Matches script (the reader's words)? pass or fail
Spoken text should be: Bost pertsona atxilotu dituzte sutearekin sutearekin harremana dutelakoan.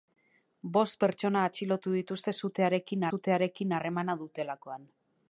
pass